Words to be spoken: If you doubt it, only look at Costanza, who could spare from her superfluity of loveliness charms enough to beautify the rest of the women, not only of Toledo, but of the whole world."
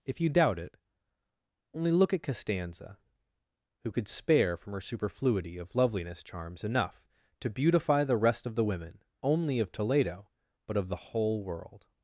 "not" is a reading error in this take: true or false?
true